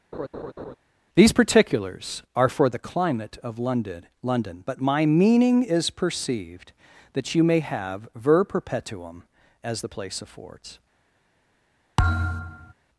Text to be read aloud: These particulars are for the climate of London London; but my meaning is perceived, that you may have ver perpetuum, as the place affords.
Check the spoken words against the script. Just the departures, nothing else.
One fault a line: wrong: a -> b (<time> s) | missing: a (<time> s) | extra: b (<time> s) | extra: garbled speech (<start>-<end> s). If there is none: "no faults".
no faults